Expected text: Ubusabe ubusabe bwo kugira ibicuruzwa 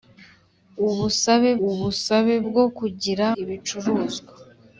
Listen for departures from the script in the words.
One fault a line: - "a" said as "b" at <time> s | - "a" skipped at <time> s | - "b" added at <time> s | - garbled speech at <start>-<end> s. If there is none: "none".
none